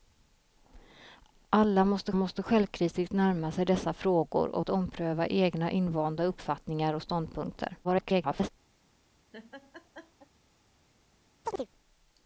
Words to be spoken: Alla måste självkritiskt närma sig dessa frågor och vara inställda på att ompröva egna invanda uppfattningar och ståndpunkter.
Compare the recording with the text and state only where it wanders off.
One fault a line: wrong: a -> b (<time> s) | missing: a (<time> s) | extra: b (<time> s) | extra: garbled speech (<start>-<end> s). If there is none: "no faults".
extra: måste (2.1 s)
missing: vara inställda på (4.6 s)
extra: garbled speech (7.8-8.5 s)